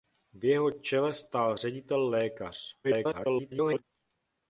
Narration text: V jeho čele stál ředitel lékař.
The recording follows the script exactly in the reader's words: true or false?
false